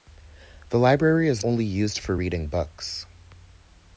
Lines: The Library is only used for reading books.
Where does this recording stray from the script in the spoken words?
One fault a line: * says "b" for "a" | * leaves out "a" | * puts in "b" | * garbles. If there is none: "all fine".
all fine